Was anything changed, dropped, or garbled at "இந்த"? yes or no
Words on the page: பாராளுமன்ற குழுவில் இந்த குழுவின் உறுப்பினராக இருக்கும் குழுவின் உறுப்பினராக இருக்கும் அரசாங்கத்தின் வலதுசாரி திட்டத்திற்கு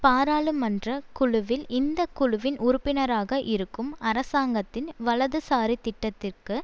no